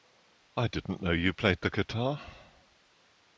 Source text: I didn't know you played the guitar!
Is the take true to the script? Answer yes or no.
yes